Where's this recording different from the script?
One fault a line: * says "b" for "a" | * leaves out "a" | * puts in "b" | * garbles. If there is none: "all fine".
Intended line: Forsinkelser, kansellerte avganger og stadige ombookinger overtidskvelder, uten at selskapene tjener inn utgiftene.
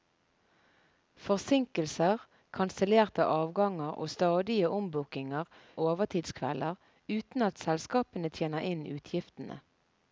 all fine